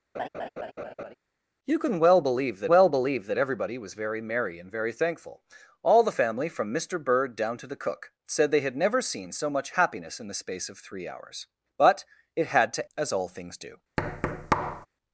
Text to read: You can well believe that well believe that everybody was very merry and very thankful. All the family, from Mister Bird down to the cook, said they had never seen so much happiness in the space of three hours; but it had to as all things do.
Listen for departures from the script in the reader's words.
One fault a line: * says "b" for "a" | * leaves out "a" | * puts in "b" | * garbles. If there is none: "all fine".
all fine